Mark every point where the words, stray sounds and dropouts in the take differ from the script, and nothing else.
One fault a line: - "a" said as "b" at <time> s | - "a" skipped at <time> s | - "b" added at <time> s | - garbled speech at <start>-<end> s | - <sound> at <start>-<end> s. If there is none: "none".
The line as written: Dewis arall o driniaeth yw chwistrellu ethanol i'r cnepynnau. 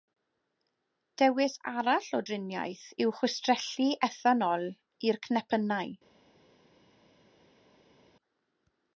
none